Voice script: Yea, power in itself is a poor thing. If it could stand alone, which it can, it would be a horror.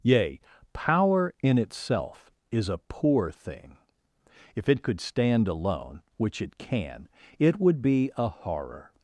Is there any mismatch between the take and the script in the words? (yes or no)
no